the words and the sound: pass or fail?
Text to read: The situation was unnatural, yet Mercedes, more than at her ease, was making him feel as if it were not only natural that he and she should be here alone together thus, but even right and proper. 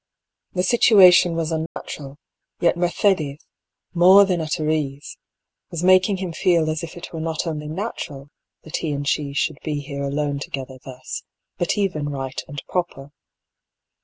fail